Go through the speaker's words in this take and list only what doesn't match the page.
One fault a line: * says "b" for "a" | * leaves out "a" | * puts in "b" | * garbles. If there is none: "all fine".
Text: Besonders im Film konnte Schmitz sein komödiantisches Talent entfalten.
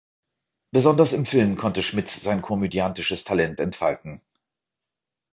all fine